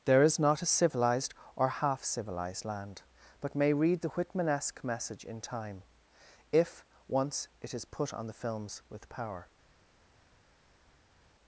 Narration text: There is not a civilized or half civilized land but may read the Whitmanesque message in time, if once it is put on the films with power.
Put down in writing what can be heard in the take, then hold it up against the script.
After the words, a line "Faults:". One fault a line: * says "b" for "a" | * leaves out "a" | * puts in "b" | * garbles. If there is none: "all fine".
There is not a civilized or half civilized land but may read the Whitmanesque message in time, if once it is put on the films with power.
Faults:
all fine